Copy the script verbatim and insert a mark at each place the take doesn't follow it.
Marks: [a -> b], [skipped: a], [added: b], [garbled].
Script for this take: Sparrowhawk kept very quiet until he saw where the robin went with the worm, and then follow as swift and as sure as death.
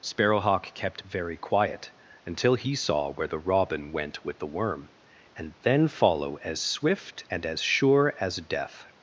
Sparrowhawk kept very quiet until he saw where the robin went with the worm, and then follow as swift and as sure as death.